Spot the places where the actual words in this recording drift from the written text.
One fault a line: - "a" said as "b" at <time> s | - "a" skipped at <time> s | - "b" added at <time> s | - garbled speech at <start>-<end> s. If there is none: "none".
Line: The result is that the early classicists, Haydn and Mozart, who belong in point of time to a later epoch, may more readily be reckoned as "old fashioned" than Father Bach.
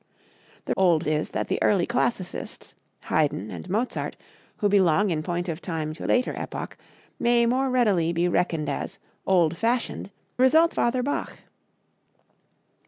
- "result" said as "old" at 0.8 s
- "a" skipped at 6.1 s
- "than" said as "result" at 10.4 s